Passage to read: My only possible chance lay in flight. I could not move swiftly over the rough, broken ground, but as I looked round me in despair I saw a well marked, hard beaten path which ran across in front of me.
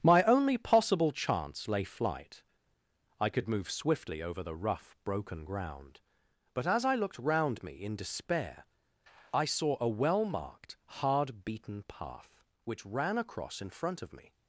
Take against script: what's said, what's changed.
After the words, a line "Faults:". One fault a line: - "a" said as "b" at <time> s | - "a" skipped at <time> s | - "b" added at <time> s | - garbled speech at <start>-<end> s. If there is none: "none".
My only possible chance lay flight. I could move swiftly over the rough, broken ground, but as I looked round me in despair I saw a well marked, hard beaten path which ran across in front of me.
Faults:
- "in" skipped at 1.8 s
- "not" skipped at 3.5 s